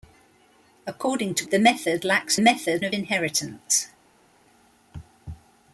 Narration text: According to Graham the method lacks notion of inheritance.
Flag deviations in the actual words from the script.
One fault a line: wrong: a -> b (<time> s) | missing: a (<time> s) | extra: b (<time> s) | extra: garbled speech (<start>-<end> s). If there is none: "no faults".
missing: Graham (1.4 s)
wrong: notion -> method (2.4 s)